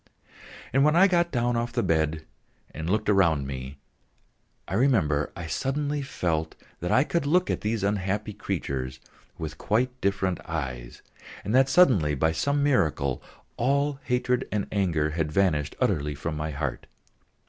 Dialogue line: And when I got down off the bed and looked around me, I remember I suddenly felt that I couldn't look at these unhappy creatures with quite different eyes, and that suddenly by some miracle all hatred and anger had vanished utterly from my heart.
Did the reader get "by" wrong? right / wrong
right